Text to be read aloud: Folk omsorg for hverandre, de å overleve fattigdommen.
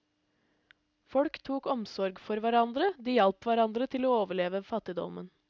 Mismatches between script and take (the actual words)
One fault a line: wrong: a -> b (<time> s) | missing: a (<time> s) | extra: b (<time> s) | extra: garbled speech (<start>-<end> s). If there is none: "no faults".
extra: tok (1.5 s)
extra: hjalp hverandre til (3.2 s)